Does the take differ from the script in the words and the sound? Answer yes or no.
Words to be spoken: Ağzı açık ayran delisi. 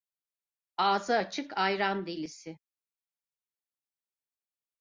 no